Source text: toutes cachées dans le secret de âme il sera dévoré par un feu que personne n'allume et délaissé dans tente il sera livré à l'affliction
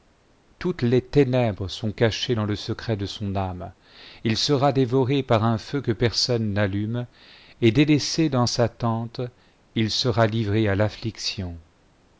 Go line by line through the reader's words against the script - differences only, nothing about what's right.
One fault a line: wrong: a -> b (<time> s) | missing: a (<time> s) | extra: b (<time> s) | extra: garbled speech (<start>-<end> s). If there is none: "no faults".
extra: les ténèbres sont (0.8 s)
extra: son (3.0 s)
extra: sa (8.4 s)